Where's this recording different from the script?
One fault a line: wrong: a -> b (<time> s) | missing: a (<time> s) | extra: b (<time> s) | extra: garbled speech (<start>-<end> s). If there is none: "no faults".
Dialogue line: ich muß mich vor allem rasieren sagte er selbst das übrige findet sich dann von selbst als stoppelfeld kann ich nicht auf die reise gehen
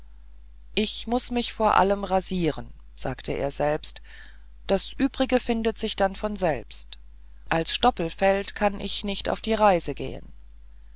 no faults